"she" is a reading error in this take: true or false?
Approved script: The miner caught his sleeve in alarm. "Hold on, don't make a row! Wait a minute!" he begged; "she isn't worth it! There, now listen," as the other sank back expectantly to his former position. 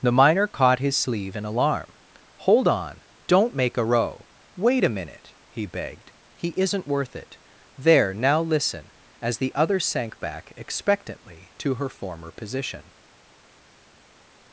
true